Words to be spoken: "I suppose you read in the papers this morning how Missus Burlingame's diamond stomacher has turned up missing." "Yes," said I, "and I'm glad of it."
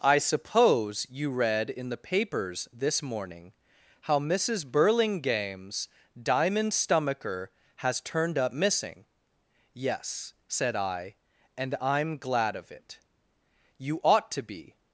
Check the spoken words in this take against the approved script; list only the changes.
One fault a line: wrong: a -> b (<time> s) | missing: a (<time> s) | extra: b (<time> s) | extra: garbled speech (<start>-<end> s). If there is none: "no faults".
extra: You ought to be (13.8 s)